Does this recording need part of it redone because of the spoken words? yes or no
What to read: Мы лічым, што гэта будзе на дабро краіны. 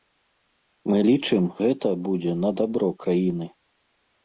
yes